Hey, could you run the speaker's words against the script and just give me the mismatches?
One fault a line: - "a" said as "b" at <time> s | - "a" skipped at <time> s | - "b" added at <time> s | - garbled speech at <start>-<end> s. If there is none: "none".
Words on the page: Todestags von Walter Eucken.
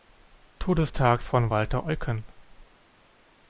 none